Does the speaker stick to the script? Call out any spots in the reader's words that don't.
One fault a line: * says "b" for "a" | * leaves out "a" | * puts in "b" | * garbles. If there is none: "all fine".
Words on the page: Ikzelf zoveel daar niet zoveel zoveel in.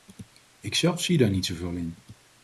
* says "zie" for "zoveel"
* leaves out "zoveel"